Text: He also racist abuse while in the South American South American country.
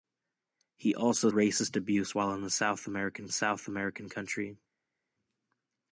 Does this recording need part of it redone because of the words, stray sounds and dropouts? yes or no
no